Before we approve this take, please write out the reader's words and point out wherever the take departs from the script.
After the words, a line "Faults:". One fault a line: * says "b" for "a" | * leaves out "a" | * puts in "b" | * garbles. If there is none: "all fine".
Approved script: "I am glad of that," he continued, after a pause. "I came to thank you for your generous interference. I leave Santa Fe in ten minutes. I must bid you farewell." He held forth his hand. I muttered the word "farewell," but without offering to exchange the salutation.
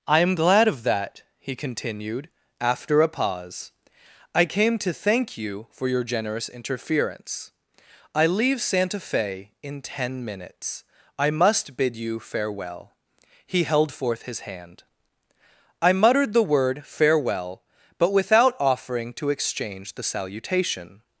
"I am glad of that," he continued, after a pause. "I came to thank you for your generous interference. I leave Santa Fe in ten minutes. I must bid you farewell." He held forth his hand. I muttered the word "farewell," but without offering to exchange the salutation.
Faults:
all fine